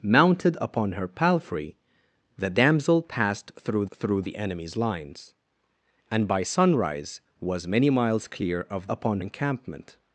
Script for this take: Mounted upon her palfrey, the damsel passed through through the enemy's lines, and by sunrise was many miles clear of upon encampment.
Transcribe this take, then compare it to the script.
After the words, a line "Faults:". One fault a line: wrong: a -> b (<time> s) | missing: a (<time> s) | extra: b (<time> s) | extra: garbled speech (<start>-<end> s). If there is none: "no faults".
Mounted upon her palfrey, the damsel passed through through the enemy's lines, and by sunrise was many miles clear of upon encampment.
Faults:
no faults